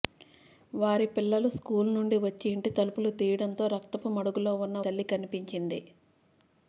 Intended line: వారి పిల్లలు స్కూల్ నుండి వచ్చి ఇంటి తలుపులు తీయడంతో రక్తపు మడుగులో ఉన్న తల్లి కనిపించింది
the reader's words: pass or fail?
pass